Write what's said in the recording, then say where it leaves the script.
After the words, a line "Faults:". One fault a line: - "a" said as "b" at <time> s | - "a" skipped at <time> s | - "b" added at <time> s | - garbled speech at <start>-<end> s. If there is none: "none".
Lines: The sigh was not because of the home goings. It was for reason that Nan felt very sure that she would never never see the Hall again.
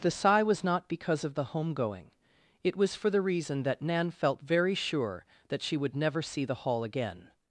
The sigh was not because of the home going. It was for the reason that Nan felt very sure that she would never see the Hall again.
Faults:
- "goings" said as "going" at 1.7 s
- "the" added at 3.1 s
- "never" skipped at 6.2 s